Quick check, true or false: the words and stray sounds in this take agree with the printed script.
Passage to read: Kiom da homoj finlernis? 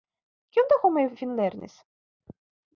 true